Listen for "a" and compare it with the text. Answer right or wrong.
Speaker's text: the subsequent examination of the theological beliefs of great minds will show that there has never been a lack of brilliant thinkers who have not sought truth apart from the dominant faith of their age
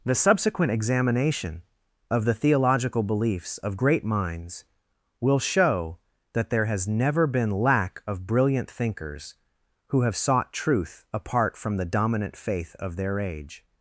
wrong